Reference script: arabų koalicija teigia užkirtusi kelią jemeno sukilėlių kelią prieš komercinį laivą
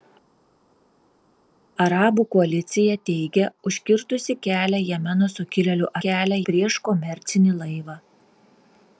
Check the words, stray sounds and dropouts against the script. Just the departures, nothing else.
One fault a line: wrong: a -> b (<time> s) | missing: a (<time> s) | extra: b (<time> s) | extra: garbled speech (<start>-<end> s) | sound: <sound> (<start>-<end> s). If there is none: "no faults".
no faults